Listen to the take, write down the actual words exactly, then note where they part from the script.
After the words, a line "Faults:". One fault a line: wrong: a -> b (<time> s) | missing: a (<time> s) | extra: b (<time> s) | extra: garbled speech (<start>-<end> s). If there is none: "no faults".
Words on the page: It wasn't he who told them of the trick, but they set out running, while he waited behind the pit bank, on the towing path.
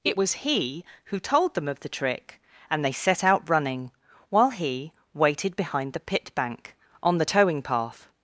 It was he who told them of the trick, and they set out running, while he waited behind the pit bank, on the towing path.
Faults:
wrong: wasn't -> was (0.1 s)
wrong: but -> and (2.7 s)